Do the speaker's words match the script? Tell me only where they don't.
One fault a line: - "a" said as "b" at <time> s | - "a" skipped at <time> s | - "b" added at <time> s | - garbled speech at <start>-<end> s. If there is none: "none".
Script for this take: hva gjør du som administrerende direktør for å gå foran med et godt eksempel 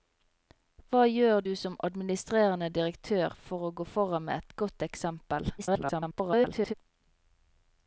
- garbled speech at 5.6-6.7 s